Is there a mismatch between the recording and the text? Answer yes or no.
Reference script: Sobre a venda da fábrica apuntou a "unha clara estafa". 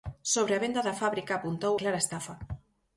yes